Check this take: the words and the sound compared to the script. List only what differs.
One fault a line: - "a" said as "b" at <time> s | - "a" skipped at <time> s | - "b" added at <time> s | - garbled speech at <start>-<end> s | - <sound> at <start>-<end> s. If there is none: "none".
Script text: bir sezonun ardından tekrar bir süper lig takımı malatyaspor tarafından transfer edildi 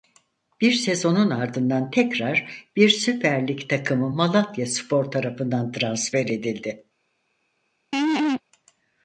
- laugh at 7.9-8.4 s